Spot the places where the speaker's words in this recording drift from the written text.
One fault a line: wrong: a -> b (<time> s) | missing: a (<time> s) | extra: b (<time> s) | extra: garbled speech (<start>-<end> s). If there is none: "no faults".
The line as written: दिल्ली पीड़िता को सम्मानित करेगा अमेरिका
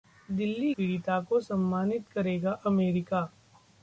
no faults